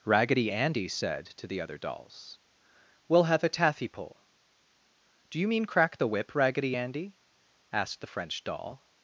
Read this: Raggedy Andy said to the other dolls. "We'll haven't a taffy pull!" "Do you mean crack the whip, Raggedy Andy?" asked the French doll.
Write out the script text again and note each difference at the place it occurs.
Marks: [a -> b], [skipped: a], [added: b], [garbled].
Raggedy Andy said to the other dolls. "We'll [haven't -> have] a taffy pull!" "Do you mean crack the whip, Raggedy Andy?" asked the French doll.